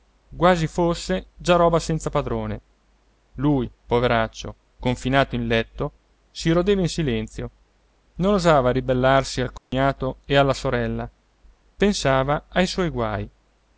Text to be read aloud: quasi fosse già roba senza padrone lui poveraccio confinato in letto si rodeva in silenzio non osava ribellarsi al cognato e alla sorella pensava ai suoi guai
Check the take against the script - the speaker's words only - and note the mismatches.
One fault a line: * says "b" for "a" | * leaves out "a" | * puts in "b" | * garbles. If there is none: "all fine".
all fine